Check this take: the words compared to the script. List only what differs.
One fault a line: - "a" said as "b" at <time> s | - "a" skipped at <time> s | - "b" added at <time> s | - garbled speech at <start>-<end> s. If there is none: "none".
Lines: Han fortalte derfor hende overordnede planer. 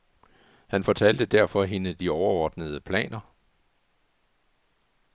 - "de" added at 1.9 s